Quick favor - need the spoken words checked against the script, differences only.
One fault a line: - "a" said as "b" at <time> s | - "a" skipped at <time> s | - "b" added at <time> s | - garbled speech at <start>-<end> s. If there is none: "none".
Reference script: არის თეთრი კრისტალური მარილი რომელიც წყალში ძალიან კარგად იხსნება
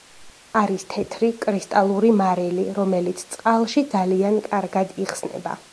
none